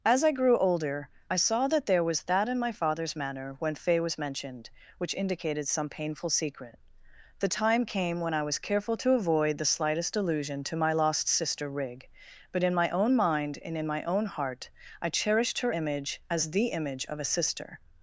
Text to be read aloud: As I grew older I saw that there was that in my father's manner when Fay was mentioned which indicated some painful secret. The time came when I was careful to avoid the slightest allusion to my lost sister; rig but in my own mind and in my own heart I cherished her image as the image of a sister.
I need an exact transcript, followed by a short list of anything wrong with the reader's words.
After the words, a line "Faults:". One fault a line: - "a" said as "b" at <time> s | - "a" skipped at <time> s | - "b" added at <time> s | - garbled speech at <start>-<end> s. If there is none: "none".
As I grew older I saw that there was that in my father's manner when Fay was mentioned which indicated some painful secret. The time came when I was careful to avoid the slightest allusion to my lost sister; rig but in my own mind and in my own heart I cherished her image as the image of a sister.
Faults:
none